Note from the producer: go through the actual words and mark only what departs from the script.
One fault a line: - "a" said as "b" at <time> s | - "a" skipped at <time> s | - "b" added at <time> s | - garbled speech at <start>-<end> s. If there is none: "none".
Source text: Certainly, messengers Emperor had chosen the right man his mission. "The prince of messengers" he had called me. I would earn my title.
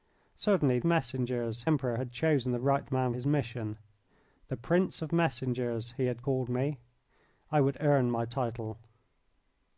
none